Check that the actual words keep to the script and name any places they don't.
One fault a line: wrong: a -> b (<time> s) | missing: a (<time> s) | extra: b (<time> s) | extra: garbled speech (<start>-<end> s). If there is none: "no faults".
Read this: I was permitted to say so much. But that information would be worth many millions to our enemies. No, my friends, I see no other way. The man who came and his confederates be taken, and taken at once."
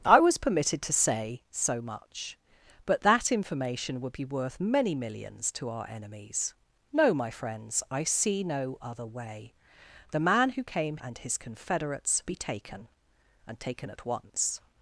no faults